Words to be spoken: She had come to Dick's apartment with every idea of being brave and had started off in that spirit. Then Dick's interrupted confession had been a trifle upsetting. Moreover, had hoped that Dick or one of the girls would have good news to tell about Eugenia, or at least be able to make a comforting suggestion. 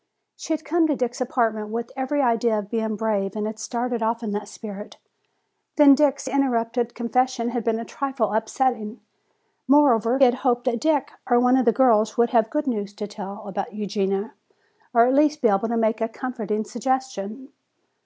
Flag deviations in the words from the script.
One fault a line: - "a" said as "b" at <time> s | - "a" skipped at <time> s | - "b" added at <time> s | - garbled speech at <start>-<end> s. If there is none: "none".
none